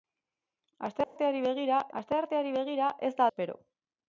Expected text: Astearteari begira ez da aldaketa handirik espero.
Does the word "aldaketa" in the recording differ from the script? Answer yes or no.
yes